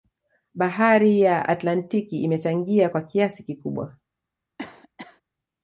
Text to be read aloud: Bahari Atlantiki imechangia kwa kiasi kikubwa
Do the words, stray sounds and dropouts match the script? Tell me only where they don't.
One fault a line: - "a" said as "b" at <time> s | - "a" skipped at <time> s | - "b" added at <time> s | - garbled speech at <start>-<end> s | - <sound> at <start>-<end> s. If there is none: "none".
- "ya" added at 1.2 s
- cough at 4.6-5.2 s